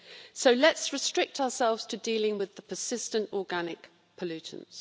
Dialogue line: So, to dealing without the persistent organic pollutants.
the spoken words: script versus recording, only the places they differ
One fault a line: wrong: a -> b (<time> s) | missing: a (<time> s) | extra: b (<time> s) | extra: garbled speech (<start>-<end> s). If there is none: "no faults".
extra: let's restrict ourselves (0.5 s)
wrong: without -> with (2.4 s)